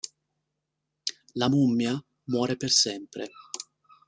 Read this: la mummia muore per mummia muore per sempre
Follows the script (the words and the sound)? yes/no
no